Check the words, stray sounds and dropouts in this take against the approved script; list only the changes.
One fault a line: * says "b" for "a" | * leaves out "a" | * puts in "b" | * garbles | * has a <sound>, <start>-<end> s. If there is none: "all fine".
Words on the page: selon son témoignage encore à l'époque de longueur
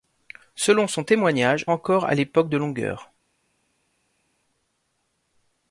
all fine